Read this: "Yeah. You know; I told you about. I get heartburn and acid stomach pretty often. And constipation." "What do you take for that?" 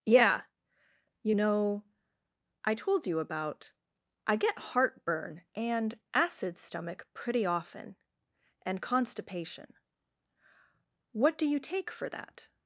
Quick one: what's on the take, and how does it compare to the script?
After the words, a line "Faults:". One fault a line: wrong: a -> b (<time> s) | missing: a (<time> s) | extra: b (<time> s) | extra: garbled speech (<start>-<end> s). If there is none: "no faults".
"Yeah. You know; I told you about. I get heartburn and acid stomach pretty often. And constipation." "What do you take for that?"
Faults:
no faults